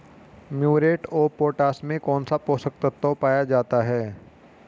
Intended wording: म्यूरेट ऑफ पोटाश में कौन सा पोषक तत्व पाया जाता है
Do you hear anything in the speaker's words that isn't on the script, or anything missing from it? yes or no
no